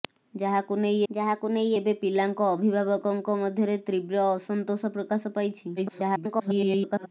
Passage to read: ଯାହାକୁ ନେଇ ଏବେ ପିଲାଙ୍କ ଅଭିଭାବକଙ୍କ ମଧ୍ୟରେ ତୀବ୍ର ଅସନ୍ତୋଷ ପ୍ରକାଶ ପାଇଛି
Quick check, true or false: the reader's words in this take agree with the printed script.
false